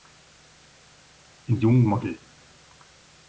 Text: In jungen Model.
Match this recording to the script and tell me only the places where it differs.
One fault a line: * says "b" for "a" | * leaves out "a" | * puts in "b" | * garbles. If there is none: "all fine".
all fine